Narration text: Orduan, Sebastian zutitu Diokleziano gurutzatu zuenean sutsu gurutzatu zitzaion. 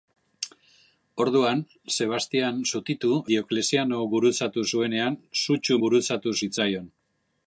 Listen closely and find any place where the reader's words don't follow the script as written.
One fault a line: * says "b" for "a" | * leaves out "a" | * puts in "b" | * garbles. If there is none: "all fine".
all fine